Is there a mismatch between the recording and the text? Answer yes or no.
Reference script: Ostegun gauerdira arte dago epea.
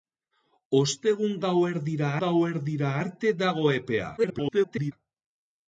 yes